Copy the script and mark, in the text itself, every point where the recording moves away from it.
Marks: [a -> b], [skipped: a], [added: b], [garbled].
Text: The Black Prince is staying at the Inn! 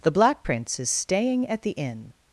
The Black Prince is staying at the Inn!